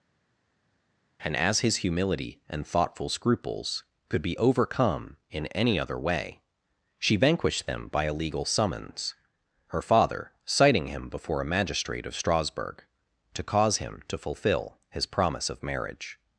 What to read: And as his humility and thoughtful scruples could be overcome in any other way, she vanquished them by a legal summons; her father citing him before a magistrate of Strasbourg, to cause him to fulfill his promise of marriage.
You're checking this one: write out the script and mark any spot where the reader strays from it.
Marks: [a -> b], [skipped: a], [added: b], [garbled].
And as his humility and thoughtful scruples could be overcome in any other way, she vanquished them by a legal summons; her father citing him before a magistrate of Strasbourg, to cause him to fulfill his promise of marriage.